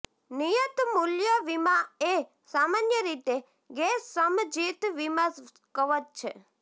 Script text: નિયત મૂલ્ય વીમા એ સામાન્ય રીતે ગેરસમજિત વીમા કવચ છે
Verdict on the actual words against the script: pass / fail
pass